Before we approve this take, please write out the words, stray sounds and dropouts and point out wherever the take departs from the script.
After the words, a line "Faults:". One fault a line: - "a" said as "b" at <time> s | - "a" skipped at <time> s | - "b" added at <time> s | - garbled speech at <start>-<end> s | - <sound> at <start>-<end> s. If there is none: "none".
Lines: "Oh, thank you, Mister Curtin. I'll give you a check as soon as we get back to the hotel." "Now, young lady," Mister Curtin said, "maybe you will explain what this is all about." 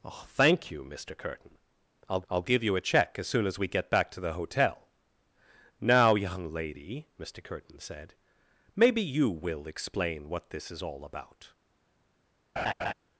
"Oh, thank you, Mister Curtin. I'll I'll give you a check as soon as we get back to the hotel." "Now, young lady," Mister Curtin said, "maybe you will explain what this is all about."
Faults:
- "I'll" added at 2.3 s
- laugh at 12.6-12.9 s